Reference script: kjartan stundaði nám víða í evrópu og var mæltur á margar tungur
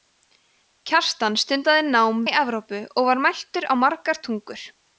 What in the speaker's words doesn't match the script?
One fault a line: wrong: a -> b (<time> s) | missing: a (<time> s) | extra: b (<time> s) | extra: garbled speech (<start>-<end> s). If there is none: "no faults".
missing: víða (2.2 s)